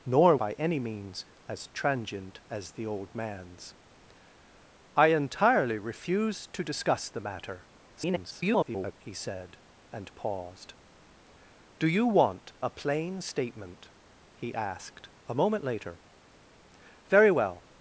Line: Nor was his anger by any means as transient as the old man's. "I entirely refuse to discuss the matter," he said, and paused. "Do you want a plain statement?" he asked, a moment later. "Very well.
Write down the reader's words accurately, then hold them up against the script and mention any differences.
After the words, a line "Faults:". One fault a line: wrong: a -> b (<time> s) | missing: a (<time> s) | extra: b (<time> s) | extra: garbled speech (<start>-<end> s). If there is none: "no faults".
Nor by any means as transient as the old man's. "I entirely refuse to discuss the matter," [garbled] he said, and paused. "Do you want a plain statement?" he asked, a moment later. "Very well.
Faults:
missing: was his anger (0.3 s)
extra: garbled speech (8.0-8.9 s)